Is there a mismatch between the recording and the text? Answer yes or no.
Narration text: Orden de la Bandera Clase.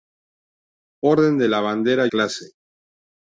no